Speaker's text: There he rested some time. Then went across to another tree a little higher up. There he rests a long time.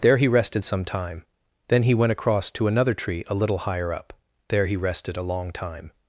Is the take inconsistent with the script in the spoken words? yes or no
yes